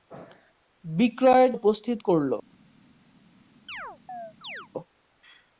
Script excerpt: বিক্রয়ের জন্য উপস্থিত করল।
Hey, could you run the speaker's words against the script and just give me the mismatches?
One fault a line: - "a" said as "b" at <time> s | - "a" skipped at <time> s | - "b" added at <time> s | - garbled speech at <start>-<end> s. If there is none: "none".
- "জন্য" skipped at 1.5 s